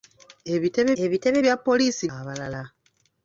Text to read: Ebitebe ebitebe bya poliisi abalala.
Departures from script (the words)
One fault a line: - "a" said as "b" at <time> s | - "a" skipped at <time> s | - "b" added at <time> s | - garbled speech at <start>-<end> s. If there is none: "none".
none